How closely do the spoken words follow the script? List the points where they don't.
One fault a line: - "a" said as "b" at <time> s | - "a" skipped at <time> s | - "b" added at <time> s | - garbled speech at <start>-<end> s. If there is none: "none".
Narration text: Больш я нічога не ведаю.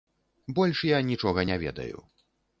none